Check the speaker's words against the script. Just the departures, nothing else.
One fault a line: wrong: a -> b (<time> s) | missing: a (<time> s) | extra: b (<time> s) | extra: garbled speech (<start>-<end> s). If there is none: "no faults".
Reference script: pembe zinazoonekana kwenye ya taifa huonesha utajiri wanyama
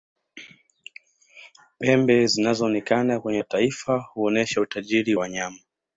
no faults